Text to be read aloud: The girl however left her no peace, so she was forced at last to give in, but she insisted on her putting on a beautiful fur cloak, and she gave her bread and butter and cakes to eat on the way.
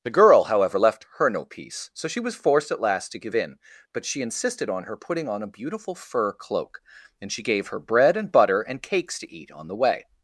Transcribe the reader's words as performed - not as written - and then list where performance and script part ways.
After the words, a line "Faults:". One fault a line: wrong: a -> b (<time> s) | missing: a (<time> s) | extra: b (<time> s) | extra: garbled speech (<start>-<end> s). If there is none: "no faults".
The girl however left her no peace, so she was forced at last to give in, but she insisted on her putting on a beautiful fur cloak, and she gave her bread and butter and cakes to eat on the way.
Faults:
no faults